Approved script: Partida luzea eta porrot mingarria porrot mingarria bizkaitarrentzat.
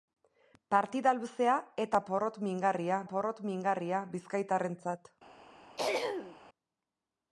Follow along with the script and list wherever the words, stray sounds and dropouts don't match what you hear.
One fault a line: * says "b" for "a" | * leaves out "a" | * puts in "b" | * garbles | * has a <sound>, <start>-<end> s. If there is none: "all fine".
* has a throat clearing, 5.8-6.4 s